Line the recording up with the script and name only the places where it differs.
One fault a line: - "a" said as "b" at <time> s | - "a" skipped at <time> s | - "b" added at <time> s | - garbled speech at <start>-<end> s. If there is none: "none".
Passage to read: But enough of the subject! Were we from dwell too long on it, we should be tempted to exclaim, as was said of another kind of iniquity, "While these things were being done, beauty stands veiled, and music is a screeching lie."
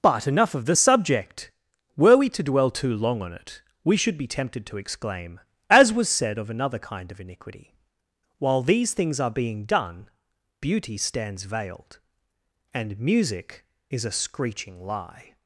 - "from" said as "to" at 2.3 s
- "were" said as "are" at 9.2 s